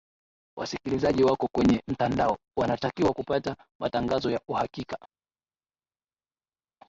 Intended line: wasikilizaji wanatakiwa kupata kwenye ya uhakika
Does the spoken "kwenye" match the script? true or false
false